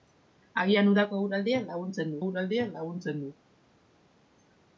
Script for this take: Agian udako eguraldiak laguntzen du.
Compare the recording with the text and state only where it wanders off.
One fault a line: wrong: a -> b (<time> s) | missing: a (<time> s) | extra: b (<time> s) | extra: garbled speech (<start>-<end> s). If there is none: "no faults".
extra: eguraldiak laguntzen (2.2 s)